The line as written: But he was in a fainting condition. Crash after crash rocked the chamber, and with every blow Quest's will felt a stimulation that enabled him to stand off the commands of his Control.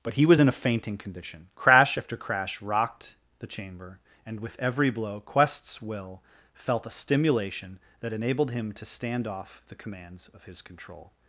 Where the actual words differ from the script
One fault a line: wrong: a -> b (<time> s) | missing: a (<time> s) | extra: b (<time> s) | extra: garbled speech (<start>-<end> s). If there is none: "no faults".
no faults